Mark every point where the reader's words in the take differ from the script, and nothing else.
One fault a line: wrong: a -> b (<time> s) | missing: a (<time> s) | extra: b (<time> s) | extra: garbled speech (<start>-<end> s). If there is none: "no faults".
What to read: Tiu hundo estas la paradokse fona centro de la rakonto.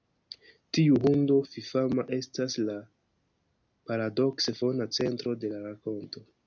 extra: fifama (1.5 s)